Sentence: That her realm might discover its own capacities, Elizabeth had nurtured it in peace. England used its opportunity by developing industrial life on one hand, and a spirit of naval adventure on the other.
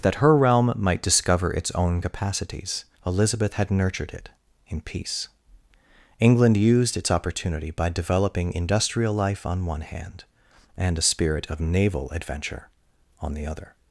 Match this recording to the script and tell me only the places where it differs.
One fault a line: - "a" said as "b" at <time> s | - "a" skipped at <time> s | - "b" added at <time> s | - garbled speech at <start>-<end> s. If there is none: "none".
none